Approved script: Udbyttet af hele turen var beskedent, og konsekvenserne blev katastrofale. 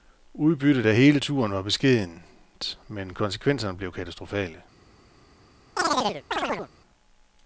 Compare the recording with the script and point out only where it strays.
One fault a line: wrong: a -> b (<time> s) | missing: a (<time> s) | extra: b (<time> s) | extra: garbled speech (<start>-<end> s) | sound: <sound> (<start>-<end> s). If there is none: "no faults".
wrong: og -> men (2.9 s)
sound: chirp (5.8-6.7 s)